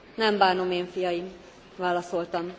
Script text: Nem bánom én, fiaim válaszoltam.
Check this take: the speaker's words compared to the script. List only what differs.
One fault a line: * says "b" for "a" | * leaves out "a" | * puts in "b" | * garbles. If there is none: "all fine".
all fine